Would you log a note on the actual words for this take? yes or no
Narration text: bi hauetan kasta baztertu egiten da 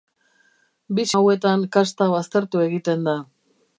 no